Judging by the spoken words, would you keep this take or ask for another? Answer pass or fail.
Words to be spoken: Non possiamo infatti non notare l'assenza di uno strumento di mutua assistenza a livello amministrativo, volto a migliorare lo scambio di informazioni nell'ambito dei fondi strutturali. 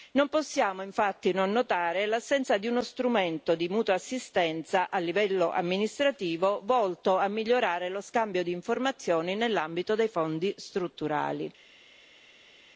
pass